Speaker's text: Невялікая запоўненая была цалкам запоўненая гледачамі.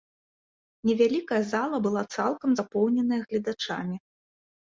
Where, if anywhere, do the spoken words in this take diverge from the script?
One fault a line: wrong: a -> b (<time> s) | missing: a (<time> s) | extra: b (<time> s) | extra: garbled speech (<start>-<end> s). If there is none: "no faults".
wrong: запоўненая -> зала (1.5 s)